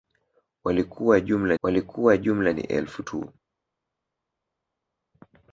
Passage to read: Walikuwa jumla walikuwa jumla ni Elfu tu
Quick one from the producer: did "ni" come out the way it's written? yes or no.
yes